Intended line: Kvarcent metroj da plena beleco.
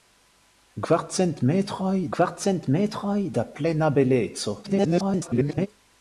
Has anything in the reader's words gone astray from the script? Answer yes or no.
yes